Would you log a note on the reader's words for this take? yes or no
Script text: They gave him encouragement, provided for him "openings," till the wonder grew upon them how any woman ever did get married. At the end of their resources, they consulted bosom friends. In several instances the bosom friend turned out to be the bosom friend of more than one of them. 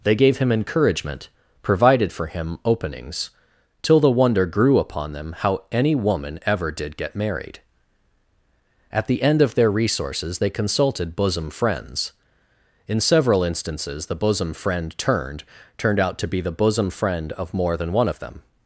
yes